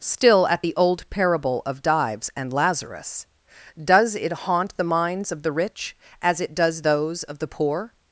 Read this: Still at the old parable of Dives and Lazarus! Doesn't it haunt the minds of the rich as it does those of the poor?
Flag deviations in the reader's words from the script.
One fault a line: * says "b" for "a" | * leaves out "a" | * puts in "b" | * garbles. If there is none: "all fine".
* says "Does" for "Doesn't"